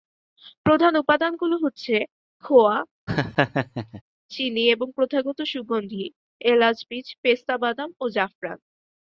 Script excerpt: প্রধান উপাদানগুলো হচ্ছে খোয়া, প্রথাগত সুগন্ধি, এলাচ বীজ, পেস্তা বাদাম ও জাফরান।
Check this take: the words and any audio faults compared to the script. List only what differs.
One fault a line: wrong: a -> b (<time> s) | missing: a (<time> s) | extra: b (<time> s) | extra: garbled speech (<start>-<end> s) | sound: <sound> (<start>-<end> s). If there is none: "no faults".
sound: laugh (3.1-4.0 s)
extra: চিনি এবং (4.3 s)